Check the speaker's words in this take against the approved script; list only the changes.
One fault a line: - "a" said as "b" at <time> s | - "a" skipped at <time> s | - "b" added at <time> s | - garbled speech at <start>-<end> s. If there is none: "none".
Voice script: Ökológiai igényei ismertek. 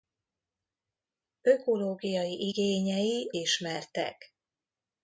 none